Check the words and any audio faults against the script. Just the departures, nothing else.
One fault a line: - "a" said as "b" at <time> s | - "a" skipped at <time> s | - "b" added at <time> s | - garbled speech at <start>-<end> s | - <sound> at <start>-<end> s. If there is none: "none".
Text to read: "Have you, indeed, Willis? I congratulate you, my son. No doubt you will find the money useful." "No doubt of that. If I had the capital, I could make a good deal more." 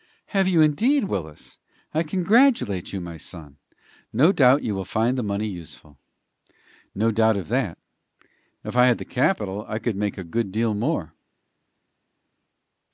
none